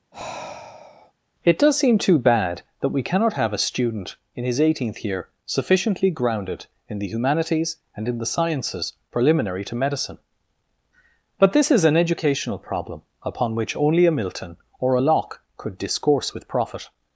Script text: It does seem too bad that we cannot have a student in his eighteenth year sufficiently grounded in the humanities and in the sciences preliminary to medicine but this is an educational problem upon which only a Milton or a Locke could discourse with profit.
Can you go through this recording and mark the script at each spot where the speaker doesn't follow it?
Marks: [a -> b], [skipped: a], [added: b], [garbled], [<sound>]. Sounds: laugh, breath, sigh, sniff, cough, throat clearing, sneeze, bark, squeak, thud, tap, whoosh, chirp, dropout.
[sigh] It does seem too bad that we cannot have a student in his eighteenth year sufficiently grounded in the humanities and in the sciences preliminary to medicine but this is an educational problem upon which only a Milton or a Locke could discourse with profit.